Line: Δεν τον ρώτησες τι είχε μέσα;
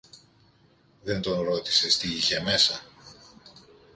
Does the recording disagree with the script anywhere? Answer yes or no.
no